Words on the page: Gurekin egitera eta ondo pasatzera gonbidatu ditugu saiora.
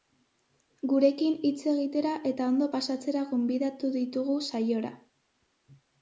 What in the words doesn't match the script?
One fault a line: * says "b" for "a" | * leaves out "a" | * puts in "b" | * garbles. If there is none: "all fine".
* puts in "hitz"